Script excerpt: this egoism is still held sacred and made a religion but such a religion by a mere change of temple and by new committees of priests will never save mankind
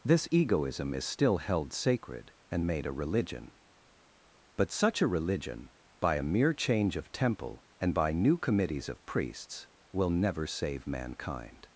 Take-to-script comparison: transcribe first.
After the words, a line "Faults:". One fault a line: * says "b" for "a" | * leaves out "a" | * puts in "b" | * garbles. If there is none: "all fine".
this egoism is still held sacred and made a religion but such a religion by a mere change of temple and by new committees of priests will never save mankind
Faults:
all fine